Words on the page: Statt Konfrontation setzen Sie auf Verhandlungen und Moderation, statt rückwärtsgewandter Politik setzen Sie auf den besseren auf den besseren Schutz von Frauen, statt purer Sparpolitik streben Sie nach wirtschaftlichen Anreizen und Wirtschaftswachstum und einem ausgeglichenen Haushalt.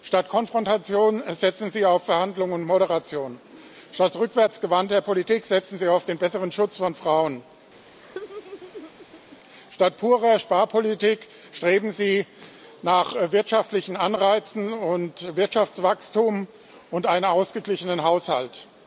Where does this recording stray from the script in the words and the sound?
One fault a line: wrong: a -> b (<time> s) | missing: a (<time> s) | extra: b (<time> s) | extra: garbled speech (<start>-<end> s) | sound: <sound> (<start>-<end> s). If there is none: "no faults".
missing: auf den besseren (6.5 s)
sound: laugh (7.9-9.4 s)